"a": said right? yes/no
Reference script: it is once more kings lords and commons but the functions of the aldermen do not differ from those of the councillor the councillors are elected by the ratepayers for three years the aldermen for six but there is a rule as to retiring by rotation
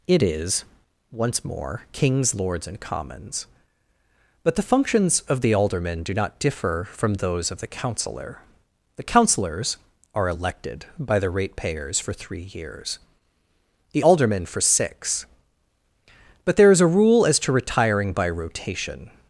yes